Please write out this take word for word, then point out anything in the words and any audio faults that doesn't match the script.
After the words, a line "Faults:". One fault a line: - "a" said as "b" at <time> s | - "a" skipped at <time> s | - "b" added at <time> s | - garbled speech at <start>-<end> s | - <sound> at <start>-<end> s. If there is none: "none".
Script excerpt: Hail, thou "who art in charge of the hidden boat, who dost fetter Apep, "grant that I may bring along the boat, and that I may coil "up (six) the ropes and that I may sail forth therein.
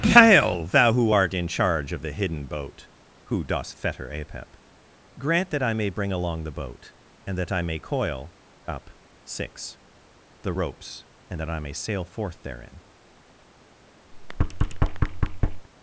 Hail, thou "who art in charge of the hidden boat, who dost fetter Apep, "grant that I may bring along the boat, and that I may coil "up (six) the ropes and that I may sail forth therein.
Faults:
- thud at 14.1-15.7 s